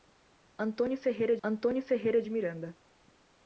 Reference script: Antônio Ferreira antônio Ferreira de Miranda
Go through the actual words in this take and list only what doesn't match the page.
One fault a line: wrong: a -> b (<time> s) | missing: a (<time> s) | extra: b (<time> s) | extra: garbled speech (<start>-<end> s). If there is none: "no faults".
no faults